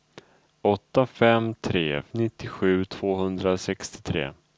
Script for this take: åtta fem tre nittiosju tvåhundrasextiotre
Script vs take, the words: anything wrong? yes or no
no